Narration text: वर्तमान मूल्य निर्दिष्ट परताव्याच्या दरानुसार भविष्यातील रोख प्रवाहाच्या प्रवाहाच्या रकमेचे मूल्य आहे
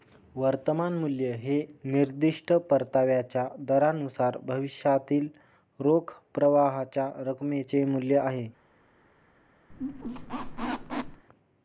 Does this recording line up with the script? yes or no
no